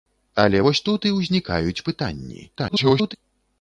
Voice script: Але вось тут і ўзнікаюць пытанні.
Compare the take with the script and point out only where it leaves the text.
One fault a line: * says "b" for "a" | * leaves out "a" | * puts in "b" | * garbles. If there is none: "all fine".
* garbles